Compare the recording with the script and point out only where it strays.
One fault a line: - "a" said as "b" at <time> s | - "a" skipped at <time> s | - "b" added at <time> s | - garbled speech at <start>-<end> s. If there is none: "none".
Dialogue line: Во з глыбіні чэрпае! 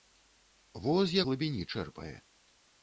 none